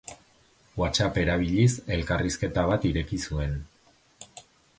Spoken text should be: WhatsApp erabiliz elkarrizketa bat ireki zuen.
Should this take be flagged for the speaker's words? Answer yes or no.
no